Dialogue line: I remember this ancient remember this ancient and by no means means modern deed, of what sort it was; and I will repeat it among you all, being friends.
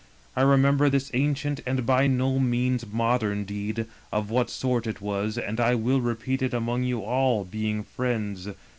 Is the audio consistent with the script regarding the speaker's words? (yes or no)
no